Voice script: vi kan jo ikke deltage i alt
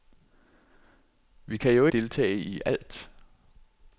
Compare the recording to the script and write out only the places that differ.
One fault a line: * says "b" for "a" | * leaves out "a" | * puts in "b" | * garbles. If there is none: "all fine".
* leaves out "ikke"